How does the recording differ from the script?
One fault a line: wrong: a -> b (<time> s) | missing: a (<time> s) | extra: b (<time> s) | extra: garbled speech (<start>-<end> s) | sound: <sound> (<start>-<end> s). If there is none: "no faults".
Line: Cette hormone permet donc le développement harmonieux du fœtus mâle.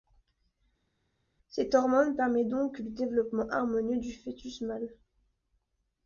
no faults